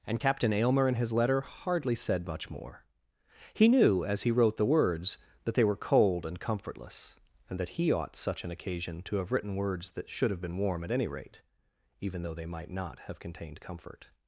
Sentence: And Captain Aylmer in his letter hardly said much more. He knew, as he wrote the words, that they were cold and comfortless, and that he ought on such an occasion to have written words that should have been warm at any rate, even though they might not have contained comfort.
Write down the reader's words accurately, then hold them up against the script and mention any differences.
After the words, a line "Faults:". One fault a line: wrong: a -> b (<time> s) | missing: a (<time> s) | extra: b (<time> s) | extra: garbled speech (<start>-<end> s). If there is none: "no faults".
And Captain Aylmer in his letter hardly said much more. He knew, as he wrote the words, that they were cold and comfortless, and that he ought such an occasion to have written words that should have been warm at any rate, even though they might not have contained comfort.
Faults:
missing: on (8.1 s)